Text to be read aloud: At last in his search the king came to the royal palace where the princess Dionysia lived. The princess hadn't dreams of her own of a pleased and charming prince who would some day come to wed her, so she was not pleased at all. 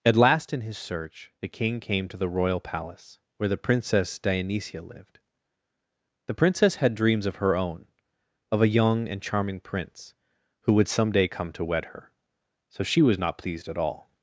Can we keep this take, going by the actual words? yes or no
no